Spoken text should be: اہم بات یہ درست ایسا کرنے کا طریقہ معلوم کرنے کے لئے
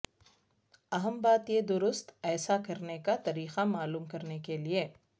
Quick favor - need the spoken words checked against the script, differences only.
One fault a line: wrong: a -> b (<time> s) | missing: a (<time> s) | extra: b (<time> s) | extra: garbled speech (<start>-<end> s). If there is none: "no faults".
no faults